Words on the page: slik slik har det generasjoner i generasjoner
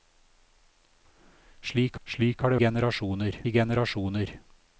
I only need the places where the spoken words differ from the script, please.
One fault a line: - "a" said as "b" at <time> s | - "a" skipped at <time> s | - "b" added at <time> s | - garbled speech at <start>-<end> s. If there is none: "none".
none